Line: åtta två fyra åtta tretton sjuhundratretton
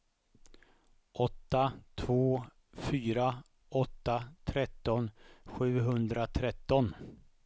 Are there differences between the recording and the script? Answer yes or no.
no